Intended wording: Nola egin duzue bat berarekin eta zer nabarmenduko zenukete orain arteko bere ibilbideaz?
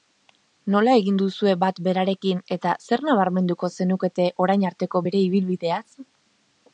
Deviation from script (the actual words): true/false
false